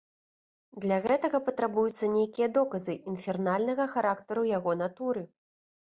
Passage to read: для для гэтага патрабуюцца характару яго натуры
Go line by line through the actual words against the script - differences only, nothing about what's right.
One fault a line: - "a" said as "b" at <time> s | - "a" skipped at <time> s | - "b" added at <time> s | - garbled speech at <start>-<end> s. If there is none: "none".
- "для" skipped at 1.0 s
- "нейкія доказы інфернальнага" added at 2.2 s